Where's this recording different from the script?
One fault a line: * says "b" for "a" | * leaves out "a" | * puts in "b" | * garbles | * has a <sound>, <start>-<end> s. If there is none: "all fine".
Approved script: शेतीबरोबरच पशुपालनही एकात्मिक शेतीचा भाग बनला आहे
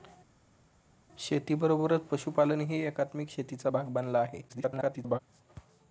* garbles